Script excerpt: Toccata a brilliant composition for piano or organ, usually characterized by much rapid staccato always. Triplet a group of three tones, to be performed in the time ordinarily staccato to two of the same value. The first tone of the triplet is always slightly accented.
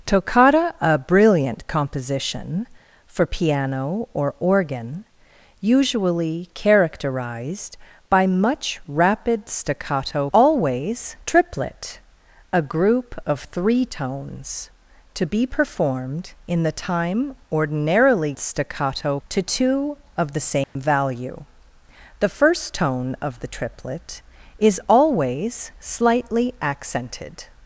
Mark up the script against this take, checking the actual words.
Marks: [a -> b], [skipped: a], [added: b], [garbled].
Toccata a brilliant composition for piano or organ, usually characterized by much rapid staccato always. Triplet a group of three tones, to be performed in the time ordinarily staccato to two of the same value. The first tone of the triplet is always slightly accented.